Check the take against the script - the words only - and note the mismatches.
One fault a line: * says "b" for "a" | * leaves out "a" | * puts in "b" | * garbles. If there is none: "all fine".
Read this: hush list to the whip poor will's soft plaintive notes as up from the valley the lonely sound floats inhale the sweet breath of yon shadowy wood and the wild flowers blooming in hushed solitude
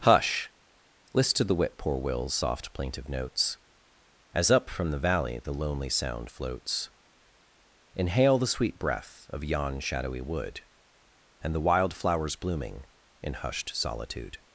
all fine